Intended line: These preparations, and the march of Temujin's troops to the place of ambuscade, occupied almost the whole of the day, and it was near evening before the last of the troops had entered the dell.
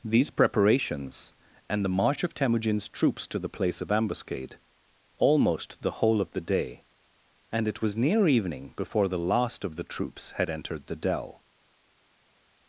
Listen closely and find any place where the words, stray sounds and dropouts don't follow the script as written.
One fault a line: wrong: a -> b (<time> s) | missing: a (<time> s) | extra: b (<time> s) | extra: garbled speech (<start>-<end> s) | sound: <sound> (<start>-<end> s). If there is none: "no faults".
missing: occupied (4.6 s)